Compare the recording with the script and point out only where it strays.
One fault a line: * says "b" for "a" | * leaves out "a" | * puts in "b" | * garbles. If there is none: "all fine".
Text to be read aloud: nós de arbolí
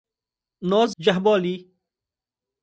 all fine